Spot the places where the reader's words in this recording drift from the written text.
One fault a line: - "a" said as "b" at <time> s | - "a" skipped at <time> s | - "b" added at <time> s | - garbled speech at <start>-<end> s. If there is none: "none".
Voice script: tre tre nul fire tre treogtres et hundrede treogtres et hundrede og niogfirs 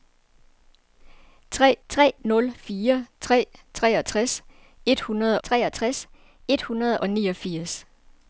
none